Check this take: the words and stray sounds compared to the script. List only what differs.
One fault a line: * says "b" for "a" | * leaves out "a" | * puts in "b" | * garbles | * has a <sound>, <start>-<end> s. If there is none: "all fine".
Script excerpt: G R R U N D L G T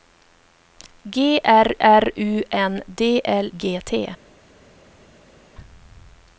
all fine